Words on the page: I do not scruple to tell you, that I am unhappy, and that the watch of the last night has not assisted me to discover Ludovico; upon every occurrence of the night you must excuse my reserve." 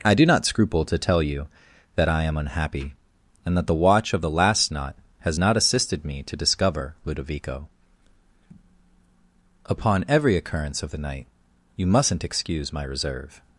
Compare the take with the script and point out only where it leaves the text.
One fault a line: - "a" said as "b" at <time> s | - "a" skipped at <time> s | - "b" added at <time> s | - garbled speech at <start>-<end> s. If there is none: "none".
- "night" said as "knot" at 4.7 s
- "must" said as "mustn't" at 11.9 s